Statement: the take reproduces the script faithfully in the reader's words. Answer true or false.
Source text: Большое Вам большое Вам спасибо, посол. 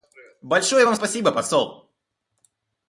false